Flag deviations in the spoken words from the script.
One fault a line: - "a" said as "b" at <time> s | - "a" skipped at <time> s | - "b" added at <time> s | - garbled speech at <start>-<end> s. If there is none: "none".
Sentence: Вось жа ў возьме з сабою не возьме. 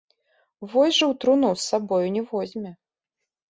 - "возьме" said as "труну" at 1.3 s